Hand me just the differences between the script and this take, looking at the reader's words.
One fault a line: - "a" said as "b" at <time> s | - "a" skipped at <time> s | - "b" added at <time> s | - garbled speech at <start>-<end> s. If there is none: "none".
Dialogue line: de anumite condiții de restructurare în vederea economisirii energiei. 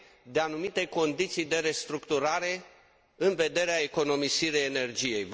none